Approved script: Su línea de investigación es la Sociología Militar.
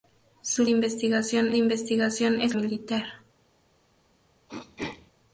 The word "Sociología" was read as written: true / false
false